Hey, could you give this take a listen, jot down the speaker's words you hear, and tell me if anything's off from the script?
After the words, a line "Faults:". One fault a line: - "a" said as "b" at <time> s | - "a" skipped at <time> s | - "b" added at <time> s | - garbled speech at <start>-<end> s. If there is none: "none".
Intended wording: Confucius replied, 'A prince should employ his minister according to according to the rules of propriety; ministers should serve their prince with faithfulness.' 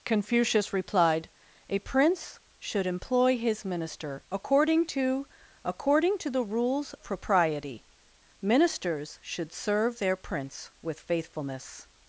Confucius replied, 'A prince should employ his minister according to according to the rules propriety; ministers should serve their prince with faithfulness.'
Faults:
- "of" skipped at 6.9 s